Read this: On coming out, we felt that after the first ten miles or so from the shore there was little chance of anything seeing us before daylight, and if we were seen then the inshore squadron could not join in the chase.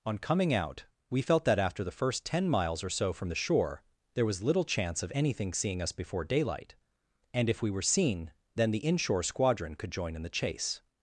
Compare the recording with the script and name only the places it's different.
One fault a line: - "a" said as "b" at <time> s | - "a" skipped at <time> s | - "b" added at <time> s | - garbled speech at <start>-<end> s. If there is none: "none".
- "not" skipped at 9.9 s